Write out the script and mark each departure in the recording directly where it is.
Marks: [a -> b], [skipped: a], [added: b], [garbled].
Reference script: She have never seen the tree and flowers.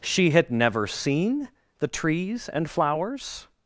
She [have -> had] never seen the [tree -> trees] and flowers.